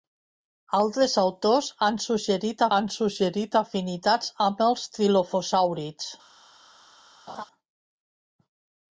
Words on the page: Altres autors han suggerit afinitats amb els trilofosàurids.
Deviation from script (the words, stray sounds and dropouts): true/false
true